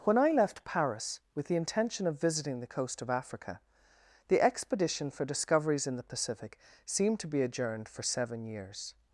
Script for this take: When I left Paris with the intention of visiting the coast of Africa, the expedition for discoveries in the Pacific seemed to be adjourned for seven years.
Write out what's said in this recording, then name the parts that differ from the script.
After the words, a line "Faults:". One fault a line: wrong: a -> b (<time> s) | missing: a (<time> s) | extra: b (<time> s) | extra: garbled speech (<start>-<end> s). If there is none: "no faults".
When I left Paris with the intention of visiting the coast of Africa, the expedition for discoveries in the Pacific seemed to be adjourned for seven years.
Faults:
no faults